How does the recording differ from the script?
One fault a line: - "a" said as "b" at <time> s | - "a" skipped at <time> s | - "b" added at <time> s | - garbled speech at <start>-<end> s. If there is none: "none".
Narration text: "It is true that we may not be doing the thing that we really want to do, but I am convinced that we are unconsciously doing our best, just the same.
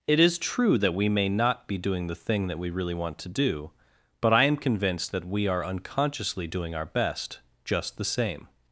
none